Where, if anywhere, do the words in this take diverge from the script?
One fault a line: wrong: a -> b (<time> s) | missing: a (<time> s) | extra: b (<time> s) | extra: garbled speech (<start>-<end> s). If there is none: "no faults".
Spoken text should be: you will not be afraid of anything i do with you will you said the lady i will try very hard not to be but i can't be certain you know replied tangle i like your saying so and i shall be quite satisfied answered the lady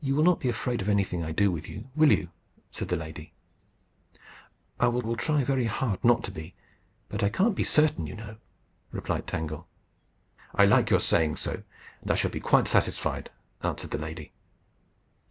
extra: will (5.0 s)